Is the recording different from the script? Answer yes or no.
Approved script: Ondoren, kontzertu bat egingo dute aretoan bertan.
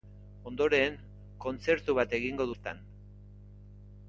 yes